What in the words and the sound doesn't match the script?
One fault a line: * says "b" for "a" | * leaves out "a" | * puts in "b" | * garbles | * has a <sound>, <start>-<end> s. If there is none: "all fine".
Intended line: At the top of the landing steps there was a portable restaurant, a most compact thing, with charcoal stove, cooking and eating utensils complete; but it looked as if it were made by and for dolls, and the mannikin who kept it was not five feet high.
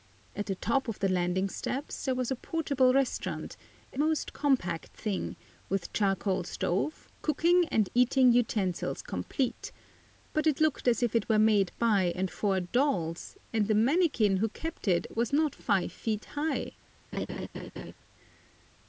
* has a laugh, 17.1-17.9 s